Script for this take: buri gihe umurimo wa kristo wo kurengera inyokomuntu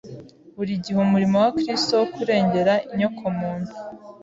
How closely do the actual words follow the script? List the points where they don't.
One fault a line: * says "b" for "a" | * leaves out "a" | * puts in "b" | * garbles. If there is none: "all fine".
all fine